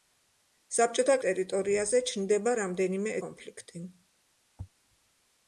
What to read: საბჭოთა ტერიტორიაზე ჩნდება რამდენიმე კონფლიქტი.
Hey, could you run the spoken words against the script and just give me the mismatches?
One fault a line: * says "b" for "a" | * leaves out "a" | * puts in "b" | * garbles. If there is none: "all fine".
all fine